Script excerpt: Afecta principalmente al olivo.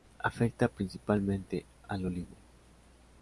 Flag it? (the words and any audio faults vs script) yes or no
no